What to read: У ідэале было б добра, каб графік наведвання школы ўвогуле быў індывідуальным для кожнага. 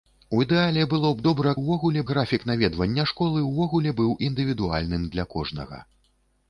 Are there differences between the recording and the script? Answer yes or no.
yes